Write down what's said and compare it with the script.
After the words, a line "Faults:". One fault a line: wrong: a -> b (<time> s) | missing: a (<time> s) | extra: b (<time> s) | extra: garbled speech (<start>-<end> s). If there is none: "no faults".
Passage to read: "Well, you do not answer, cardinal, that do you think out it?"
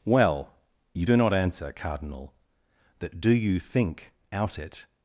"Well, you do not answer, cardinal, that do you think out it?"
Faults:
no faults